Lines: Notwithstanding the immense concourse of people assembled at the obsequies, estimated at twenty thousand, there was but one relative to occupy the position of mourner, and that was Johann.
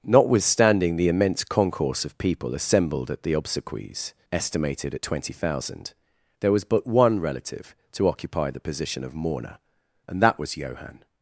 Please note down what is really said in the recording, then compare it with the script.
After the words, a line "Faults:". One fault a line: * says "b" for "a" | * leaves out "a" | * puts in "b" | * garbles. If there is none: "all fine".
Notwithstanding the immense concourse of people assembled at the obsequies, estimated at twenty thousand, there was but one relative to occupy the position of mourner, and that was Johann.
Faults:
all fine